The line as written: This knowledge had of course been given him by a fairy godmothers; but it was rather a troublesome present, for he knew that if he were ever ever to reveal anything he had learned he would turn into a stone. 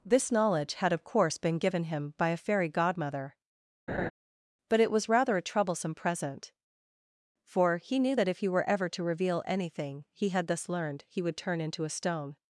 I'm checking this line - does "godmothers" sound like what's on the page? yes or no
no